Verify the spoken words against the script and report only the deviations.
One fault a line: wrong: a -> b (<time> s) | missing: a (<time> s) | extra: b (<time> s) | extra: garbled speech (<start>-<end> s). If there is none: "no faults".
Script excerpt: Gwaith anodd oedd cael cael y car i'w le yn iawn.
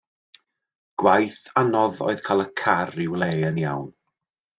missing: cael (2.4 s)